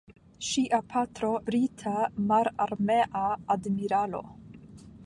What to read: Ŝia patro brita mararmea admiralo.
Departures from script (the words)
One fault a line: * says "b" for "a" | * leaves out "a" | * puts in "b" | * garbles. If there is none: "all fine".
all fine